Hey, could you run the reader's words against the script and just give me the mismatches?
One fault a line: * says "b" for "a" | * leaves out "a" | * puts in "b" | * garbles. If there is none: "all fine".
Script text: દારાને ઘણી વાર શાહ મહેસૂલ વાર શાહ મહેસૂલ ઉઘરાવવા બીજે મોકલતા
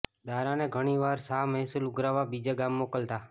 * leaves out "વાર શાહ મહેસૂલ"
* puts in "ગામ"